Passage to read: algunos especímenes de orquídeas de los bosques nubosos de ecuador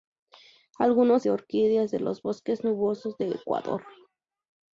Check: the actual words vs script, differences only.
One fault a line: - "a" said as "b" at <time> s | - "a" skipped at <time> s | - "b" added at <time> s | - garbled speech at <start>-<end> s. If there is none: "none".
- "especímenes" skipped at 1.3 s